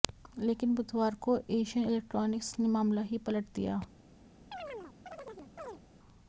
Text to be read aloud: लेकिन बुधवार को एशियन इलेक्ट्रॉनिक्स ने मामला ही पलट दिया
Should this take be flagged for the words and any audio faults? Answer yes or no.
yes